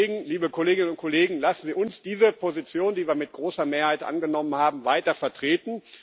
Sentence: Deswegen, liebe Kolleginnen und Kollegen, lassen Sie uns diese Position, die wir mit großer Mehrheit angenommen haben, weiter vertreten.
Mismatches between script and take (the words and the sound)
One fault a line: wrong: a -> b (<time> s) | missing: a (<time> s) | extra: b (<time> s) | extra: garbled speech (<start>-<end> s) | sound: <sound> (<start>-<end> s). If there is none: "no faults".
no faults